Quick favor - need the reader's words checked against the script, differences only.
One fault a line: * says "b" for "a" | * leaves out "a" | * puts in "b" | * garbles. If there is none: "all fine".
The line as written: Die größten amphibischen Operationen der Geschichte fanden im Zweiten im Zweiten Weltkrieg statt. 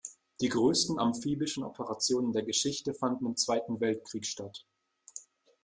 * leaves out "im Zweiten"